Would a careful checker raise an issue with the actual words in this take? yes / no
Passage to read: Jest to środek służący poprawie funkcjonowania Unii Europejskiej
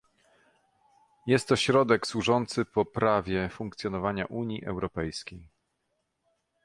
no